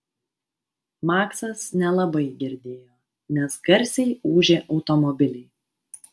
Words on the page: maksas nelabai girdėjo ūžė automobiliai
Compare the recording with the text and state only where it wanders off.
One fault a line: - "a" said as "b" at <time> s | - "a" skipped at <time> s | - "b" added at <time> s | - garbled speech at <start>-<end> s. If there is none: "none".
- "nes garsiai" added at 3.4 s